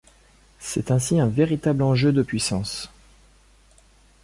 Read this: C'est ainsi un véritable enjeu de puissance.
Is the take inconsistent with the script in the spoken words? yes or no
no